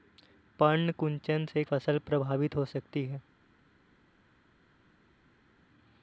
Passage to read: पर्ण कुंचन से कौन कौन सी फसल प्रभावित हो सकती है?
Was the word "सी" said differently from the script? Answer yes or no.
yes